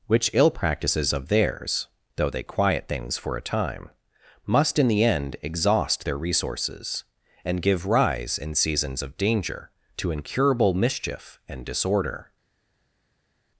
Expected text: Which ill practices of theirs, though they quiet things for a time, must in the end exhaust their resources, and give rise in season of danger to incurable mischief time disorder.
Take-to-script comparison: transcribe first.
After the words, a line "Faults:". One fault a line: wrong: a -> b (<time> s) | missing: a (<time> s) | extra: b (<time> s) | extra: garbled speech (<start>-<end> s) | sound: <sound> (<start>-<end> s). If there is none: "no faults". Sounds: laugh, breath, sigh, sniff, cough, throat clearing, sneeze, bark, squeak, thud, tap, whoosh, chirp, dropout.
Which ill practices of theirs, though they quiet things for a time, must in the end exhaust their resources, and give rise in seasons of danger to incurable mischief and disorder.
Faults:
wrong: season -> seasons (8.5 s)
wrong: time -> and (11.5 s)